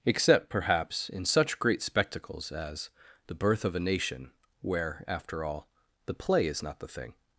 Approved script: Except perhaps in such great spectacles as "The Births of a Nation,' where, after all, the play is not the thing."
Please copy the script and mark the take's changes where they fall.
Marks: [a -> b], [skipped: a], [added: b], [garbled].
Except perhaps in such great spectacles as "The [Births -> Birth] of a Nation,' where, after all, the play is not the thing."